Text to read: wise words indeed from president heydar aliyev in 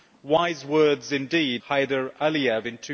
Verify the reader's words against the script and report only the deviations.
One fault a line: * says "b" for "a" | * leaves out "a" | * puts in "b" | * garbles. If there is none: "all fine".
* leaves out "from president"